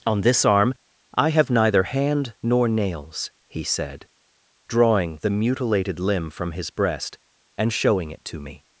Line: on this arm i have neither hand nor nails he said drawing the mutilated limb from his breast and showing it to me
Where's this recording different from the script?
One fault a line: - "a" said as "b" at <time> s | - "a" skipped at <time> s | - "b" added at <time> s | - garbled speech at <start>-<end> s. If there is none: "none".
none